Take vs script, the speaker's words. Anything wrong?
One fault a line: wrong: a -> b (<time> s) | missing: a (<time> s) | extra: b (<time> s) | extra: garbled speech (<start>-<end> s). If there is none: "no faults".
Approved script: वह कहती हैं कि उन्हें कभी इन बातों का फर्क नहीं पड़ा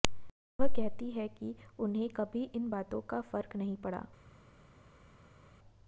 no faults